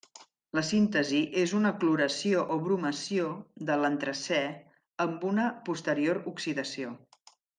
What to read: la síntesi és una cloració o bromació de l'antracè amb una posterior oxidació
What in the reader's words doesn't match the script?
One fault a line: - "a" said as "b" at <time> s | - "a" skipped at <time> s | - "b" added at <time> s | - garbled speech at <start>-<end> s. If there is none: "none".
none